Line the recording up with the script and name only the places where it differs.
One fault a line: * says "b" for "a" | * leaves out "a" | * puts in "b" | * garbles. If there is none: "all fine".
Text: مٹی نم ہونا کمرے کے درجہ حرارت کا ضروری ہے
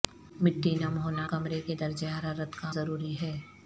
all fine